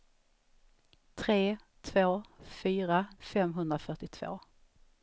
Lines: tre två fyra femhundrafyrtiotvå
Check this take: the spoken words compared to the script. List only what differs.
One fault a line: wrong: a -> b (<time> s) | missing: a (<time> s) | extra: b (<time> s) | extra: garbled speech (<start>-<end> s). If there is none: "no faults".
no faults